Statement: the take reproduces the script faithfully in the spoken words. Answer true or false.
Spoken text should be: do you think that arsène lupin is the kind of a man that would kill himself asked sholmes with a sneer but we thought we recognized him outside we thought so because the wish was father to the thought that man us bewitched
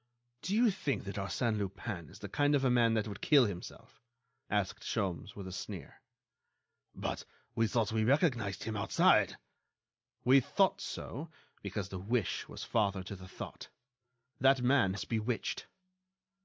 true